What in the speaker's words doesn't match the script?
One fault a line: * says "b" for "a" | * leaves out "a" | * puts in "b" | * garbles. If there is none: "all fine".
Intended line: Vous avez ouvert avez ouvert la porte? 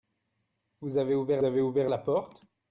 all fine